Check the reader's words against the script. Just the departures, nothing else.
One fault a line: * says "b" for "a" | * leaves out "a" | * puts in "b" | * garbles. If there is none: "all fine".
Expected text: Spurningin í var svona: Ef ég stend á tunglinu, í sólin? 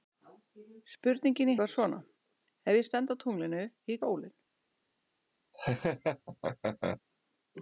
all fine